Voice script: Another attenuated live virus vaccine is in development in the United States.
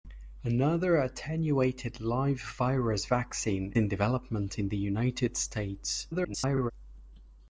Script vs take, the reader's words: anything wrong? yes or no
yes